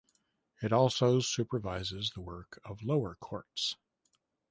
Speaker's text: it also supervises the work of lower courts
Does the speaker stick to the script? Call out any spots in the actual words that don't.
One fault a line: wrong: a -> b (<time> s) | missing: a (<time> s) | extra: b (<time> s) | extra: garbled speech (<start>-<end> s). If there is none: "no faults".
no faults